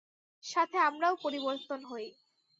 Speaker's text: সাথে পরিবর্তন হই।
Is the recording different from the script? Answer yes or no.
yes